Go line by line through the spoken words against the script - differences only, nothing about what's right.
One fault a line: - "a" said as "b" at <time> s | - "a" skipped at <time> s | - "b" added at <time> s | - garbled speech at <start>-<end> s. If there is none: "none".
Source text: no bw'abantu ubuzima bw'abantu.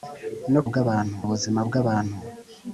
none